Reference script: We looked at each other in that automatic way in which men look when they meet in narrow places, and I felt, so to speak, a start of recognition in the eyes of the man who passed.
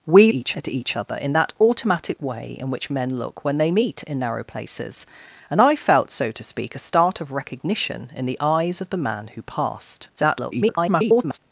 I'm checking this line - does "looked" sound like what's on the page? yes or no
no